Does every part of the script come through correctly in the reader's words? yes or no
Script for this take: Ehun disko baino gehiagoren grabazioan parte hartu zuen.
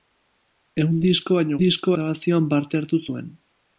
no